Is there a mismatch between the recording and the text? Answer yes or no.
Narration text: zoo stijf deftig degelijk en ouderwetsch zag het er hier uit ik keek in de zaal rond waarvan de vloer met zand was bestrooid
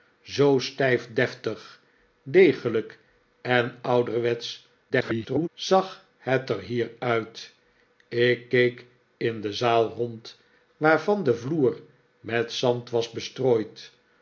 yes